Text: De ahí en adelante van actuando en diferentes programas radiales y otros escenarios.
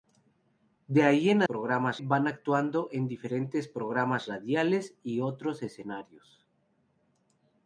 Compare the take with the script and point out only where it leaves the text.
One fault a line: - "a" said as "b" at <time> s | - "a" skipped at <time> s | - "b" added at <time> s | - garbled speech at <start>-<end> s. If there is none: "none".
- "adelante" said as "programas" at 1.4 s